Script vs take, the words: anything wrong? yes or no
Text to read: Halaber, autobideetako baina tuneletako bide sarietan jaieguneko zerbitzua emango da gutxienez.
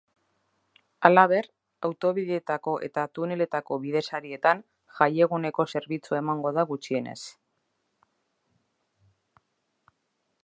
yes